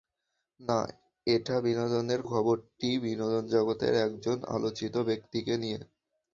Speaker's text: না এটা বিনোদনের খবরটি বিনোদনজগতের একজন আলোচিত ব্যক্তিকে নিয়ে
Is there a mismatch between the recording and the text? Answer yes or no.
no